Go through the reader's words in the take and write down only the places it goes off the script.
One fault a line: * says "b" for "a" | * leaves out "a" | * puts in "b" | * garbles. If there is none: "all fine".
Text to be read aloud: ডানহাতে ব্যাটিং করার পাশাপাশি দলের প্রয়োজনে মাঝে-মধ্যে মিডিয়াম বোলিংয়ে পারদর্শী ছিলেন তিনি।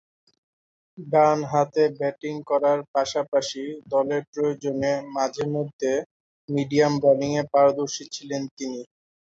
all fine